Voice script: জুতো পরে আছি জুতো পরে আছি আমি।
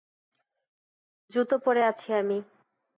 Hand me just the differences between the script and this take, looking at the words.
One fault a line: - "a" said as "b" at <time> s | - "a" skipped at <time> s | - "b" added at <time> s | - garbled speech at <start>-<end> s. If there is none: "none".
- "জুতো পরে আছি" skipped at 2.1 s